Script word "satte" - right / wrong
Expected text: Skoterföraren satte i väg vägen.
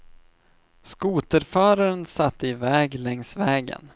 right